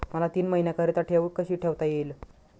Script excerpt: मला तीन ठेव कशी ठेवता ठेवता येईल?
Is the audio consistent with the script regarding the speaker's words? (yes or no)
no